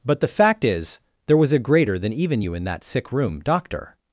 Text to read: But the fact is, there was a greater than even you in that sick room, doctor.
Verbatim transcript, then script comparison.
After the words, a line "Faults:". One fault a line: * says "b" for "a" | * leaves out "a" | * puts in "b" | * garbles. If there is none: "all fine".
But the fact is, there was a greater than even you in that sick room, doctor.
Faults:
all fine